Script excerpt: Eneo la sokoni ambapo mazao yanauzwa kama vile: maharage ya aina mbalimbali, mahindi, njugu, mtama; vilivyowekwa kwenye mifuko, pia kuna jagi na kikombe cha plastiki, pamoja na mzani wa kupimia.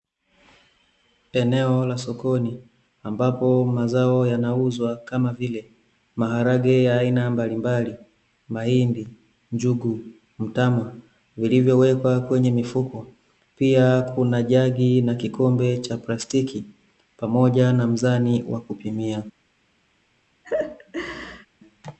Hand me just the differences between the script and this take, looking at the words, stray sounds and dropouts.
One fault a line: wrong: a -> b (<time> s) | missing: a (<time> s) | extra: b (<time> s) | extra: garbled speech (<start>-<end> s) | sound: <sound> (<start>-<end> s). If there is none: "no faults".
sound: laugh (20.4-21.5 s)